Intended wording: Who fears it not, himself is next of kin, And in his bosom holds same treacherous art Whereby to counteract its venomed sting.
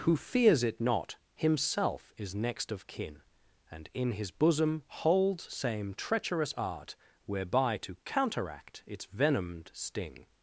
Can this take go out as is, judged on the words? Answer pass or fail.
pass